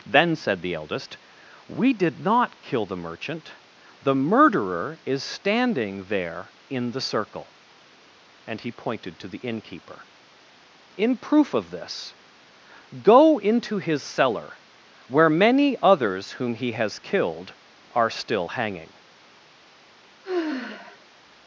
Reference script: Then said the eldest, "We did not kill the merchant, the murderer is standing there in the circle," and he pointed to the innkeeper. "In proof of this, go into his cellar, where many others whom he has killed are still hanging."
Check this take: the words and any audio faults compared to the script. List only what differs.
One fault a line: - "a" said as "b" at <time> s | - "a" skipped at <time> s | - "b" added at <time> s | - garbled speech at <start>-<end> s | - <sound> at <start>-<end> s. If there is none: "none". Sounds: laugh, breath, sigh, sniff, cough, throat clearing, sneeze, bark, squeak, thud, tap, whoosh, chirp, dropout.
- sigh at 20.2-21.1 s